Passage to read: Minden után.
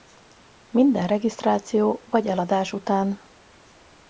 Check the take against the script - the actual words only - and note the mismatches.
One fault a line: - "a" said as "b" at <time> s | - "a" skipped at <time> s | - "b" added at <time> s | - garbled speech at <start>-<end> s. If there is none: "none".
- "regisztráció vagy eladás" added at 1.0 s